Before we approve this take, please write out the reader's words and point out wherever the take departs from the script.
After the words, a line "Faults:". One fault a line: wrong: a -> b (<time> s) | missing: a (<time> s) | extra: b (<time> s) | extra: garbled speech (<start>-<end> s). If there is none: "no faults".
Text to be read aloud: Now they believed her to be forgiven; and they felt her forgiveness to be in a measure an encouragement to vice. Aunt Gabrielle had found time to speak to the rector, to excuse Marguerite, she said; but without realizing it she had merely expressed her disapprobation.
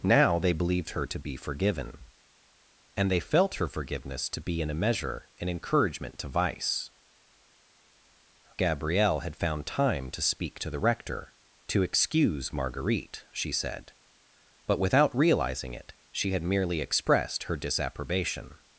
Now they believed her to be forgiven; and they felt her forgiveness to be in a measure an encouragement to vice. Gabrielle had found time to speak to the rector, to excuse Marguerite, she said; but without realizing it she had merely expressed her disapprobation.
Faults:
missing: Aunt (6.9 s)